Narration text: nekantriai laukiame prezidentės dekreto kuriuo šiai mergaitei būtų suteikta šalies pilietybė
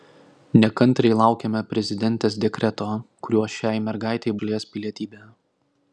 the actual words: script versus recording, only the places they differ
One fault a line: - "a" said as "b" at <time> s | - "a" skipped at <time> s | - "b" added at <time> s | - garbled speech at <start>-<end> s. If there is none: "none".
- "būtų suteikta" skipped at 4.4 s